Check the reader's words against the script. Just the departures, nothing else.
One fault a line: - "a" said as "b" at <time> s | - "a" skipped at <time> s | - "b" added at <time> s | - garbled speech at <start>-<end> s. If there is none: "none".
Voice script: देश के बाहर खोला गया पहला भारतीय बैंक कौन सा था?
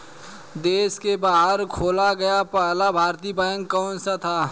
none